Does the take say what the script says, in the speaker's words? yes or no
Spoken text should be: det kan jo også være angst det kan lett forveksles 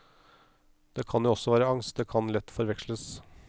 yes